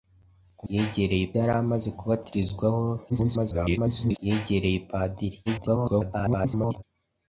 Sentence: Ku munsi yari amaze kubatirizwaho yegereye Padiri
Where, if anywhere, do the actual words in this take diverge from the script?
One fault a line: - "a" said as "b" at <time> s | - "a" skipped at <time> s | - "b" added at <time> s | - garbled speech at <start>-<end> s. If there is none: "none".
- "munsi" said as "yegereye" at 0.7 s
- garbled speech at 3.1-4.2 s
- garbled speech at 5.5-6.8 s